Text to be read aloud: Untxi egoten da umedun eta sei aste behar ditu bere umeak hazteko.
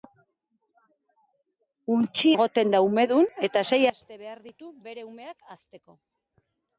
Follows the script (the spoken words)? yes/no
yes